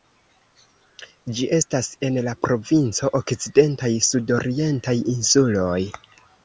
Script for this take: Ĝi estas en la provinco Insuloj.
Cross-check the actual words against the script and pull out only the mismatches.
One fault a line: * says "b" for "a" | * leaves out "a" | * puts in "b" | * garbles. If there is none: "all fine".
* puts in "Okcidentaj sudorientaj"